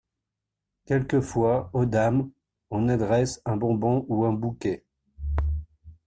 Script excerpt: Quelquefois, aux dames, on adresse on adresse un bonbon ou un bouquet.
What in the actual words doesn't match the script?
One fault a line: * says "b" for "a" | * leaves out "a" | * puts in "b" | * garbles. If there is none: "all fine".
* leaves out "on adresse"